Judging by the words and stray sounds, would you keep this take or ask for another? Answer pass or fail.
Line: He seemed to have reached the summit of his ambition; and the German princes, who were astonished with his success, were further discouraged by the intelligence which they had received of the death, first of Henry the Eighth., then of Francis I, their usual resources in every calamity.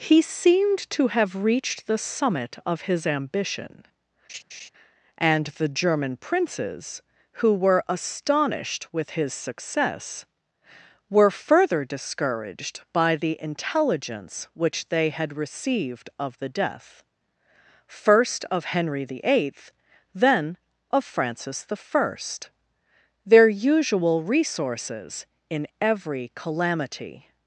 fail